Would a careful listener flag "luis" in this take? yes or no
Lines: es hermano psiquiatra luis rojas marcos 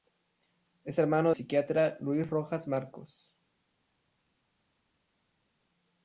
no